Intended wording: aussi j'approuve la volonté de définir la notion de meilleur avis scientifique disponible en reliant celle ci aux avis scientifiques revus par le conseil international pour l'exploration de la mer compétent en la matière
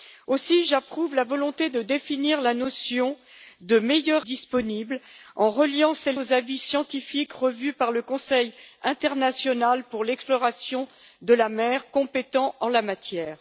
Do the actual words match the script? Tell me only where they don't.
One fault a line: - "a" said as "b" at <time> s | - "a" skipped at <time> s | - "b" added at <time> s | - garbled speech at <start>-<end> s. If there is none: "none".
- "avis scientifique" skipped at 4.2 s
- "ci" skipped at 6.2 s